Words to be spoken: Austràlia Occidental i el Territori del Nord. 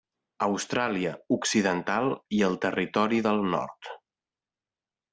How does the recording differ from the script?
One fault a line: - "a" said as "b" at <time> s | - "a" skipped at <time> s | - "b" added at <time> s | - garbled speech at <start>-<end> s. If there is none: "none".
none